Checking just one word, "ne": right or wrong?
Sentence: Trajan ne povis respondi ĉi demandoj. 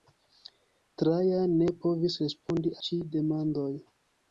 right